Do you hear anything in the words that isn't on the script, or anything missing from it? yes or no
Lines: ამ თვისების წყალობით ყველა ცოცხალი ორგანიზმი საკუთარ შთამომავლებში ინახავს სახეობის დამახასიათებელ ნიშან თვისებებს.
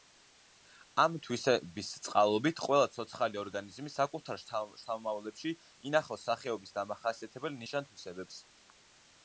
no